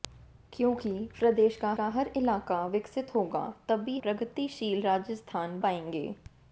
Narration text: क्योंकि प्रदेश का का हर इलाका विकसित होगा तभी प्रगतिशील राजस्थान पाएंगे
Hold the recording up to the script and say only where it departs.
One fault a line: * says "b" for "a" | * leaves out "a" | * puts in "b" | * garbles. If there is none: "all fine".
all fine